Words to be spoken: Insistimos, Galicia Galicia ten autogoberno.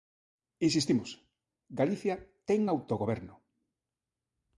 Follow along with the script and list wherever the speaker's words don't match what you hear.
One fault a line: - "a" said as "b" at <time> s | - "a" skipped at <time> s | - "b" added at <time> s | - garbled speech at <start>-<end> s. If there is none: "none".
- "Galicia" skipped at 2.1 s